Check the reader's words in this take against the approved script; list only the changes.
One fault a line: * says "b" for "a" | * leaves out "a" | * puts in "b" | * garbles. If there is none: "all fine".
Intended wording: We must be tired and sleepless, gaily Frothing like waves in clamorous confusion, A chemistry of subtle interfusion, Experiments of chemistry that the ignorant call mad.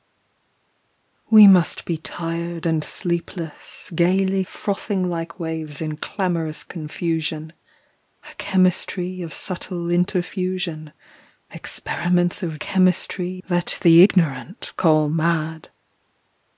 all fine